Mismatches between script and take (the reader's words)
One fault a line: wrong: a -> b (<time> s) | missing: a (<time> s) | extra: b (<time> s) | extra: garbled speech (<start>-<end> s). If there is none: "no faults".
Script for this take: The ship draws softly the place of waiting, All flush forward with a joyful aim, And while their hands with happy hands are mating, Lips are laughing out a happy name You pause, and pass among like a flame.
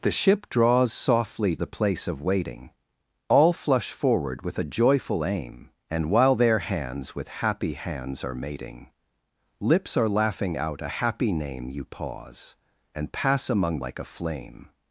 no faults